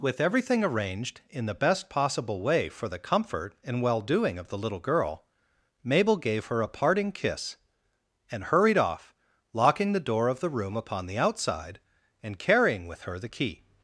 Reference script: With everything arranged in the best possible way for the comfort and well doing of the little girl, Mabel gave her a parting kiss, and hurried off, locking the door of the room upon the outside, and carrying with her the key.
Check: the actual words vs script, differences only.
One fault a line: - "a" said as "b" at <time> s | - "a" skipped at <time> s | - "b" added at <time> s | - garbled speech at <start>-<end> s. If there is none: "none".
none